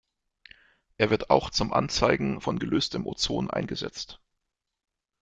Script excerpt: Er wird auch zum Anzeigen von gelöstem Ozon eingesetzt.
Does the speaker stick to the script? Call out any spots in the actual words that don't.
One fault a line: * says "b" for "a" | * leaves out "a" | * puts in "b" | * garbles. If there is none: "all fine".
all fine